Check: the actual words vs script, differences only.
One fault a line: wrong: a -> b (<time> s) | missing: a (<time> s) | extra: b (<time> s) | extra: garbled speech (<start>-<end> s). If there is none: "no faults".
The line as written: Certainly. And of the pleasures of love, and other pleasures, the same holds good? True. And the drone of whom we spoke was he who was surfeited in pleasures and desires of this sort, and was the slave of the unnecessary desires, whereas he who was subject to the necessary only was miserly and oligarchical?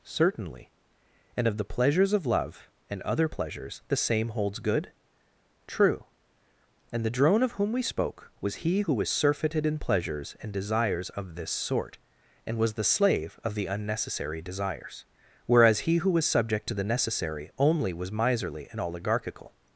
no faults